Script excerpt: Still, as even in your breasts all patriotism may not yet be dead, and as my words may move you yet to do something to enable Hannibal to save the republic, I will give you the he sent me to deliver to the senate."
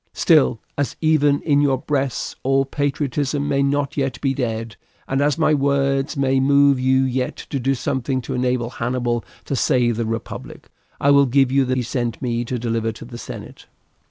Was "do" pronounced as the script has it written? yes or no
yes